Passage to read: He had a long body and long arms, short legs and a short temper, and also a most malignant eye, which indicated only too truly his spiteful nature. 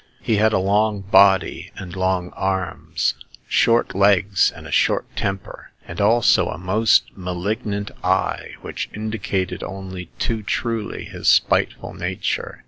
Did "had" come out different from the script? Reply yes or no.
no